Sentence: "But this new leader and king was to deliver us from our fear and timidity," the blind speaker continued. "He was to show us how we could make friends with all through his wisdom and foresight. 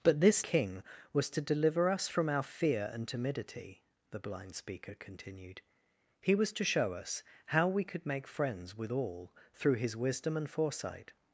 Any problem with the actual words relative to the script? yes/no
yes